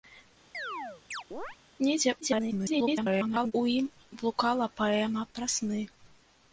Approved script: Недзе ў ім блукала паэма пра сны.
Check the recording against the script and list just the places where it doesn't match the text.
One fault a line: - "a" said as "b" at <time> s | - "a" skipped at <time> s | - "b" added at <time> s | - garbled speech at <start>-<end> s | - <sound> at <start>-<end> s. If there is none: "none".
- chirp at 0.5-1.6 s
- garbled speech at 2.2-3.5 s